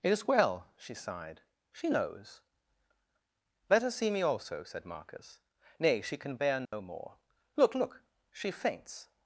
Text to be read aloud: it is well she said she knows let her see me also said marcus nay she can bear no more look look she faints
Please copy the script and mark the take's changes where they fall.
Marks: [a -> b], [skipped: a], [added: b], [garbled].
it is well she [said -> sighed] she knows let her see me also said marcus nay she can bear no more look look she faints